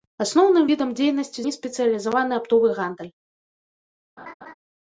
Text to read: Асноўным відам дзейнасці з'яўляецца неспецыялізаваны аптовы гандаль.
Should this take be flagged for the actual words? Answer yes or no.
yes